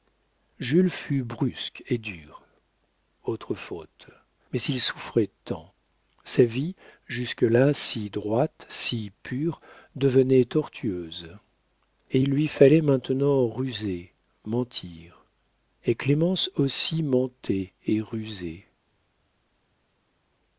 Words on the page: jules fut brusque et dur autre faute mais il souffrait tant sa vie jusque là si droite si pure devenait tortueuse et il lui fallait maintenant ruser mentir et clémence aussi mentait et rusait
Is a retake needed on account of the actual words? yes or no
no